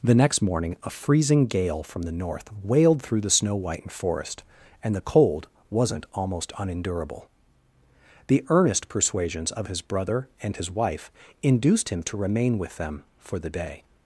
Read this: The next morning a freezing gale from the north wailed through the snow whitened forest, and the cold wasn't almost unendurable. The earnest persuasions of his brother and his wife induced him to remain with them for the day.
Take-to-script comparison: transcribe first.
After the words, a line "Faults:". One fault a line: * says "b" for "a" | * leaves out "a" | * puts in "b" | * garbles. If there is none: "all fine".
The next morning a freezing gale from the north wailed through the snow whitened forest, and the cold wasn't almost unendurable. The earnest persuasions of his brother and his wife induced him to remain with them for the day.
Faults:
all fine